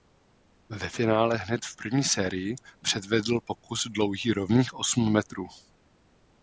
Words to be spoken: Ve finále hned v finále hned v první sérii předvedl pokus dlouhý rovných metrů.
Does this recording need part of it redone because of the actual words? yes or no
yes